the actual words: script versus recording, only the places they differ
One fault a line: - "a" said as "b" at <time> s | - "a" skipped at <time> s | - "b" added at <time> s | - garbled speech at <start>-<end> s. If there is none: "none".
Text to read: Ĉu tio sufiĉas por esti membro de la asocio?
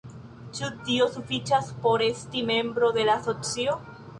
none